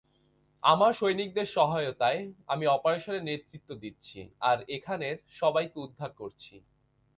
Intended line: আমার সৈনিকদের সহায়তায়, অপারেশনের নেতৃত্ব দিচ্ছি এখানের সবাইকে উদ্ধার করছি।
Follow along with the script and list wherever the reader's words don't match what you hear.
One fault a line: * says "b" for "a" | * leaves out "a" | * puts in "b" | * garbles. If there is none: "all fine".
* puts in "আমি"
* puts in "আর"